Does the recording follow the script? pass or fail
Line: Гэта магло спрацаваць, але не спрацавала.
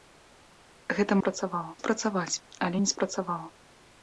fail